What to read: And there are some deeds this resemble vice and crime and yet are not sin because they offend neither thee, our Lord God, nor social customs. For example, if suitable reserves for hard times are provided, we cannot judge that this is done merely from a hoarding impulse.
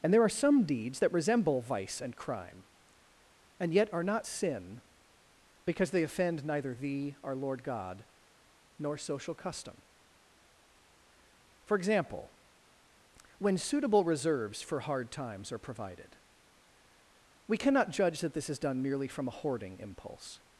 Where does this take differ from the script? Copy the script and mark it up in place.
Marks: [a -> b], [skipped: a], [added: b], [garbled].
And there are some deeds [this -> that] resemble vice and crime and yet are not sin because they offend neither thee, our Lord God, nor social [customs. -> custom] For example, [if -> when] suitable reserves for hard times are provided, we cannot judge that this is done merely from a hoarding impulse.